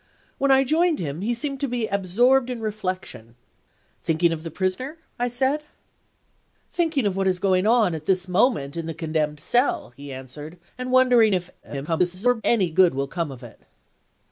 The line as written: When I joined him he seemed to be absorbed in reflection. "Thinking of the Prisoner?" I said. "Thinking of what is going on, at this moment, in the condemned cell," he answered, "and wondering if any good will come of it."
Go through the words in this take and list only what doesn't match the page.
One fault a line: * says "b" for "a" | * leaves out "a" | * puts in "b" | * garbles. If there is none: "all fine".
* garbles